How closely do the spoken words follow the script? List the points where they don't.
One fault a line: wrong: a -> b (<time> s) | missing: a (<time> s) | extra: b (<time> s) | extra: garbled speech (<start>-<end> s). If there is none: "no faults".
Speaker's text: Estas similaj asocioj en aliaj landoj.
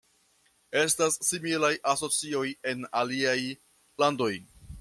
no faults